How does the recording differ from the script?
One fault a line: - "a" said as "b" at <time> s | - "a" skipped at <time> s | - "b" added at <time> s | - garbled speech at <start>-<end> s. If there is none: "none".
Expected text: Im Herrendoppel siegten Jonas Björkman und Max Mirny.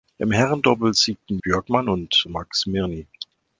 - "Jonas" skipped at 1.4 s